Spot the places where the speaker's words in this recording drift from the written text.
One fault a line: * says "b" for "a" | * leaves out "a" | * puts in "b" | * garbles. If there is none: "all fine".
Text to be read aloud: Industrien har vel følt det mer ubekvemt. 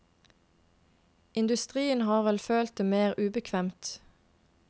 all fine